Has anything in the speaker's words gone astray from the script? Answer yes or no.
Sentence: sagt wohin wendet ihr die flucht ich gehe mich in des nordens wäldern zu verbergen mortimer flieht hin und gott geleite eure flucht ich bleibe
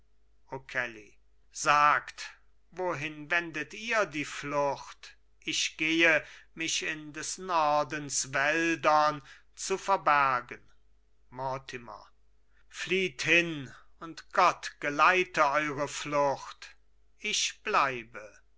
no